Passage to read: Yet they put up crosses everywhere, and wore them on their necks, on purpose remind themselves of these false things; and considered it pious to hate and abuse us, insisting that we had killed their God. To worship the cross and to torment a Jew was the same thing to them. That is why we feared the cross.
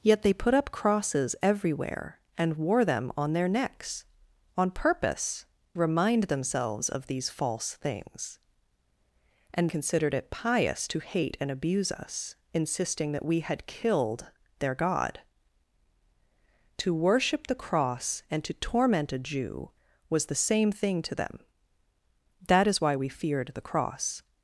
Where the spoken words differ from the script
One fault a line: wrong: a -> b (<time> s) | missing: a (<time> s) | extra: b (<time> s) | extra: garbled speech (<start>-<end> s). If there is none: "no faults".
no faults